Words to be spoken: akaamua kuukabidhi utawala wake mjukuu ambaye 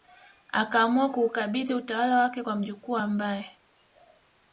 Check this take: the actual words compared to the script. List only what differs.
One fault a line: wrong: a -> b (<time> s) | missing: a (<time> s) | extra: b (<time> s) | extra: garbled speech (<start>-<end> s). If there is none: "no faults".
extra: kwa (2.4 s)